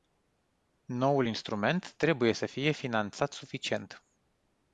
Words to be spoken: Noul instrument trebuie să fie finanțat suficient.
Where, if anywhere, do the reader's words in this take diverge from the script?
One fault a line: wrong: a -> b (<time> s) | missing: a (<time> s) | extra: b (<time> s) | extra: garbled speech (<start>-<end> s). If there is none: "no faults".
no faults